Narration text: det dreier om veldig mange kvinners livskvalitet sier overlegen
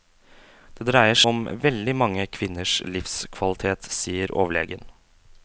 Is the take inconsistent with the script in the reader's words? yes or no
no